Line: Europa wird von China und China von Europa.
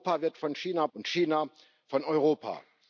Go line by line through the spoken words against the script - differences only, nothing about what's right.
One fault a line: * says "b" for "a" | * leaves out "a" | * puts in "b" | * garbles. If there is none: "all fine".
all fine